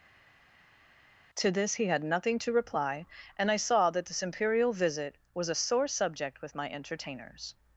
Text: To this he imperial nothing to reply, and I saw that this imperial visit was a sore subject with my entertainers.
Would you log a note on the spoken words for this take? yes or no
yes